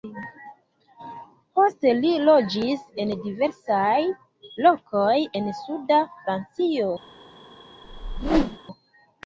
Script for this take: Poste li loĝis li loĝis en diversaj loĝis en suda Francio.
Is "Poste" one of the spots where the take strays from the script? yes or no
no